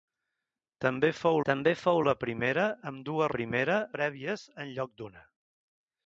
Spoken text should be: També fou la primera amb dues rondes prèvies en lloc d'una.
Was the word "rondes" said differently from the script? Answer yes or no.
yes